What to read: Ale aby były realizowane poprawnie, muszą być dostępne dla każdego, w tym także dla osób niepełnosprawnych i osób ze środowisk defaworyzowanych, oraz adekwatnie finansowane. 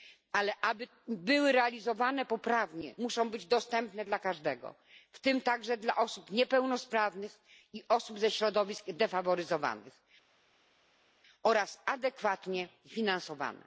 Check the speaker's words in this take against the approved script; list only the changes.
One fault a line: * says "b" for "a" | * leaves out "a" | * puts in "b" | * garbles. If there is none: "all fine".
all fine